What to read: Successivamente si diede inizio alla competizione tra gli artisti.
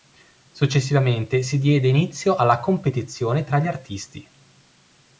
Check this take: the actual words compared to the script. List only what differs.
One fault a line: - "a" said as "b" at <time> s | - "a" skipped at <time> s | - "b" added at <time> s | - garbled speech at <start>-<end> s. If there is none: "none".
none